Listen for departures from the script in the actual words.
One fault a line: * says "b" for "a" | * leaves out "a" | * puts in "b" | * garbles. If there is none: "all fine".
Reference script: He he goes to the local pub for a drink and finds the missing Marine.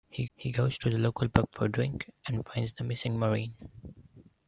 all fine